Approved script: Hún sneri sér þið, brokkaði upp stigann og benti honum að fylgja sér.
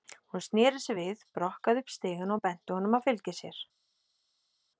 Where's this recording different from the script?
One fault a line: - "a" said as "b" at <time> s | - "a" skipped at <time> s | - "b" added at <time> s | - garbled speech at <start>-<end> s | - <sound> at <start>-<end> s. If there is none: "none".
- "þið" said as "við" at 1.0 s